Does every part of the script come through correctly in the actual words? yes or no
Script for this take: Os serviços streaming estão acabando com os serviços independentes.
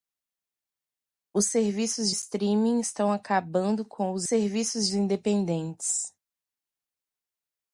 yes